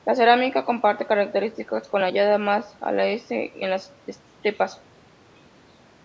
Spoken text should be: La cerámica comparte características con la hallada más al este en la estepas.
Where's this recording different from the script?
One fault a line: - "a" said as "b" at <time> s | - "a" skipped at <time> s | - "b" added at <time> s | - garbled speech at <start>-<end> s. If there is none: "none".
- "la" said as "las" at 3.7 s